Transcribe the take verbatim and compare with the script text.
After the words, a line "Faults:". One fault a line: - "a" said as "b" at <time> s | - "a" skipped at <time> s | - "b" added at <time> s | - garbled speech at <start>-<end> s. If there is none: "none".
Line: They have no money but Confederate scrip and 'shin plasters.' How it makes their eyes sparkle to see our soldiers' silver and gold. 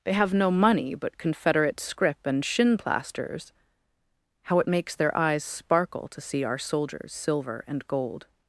They have no money but Confederate scrip and 'shin plasters.' How it makes their eyes sparkle to see our soldiers' silver and gold.
Faults:
none